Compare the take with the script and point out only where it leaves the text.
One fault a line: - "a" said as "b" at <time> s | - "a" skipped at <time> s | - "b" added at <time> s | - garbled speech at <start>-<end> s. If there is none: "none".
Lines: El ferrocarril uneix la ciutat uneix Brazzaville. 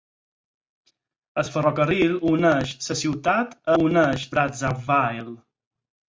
none